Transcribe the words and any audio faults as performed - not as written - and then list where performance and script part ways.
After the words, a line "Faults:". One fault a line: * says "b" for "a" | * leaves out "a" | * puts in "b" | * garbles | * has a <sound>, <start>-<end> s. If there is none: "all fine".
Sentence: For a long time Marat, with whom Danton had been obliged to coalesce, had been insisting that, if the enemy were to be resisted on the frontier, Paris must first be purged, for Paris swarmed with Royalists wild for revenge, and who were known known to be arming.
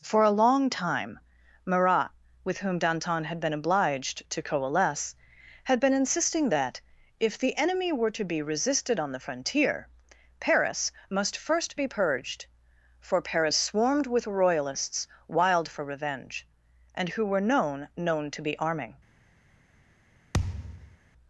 For a long time Marat, with whom Danton had been obliged to coalesce, had been insisting that, if the enemy were to be resisted on the frontier, Paris must first be purged, for Paris swarmed with Royalists wild for revenge, and who were known known to be arming.
Faults:
* has a thud, 20.3-21.0 s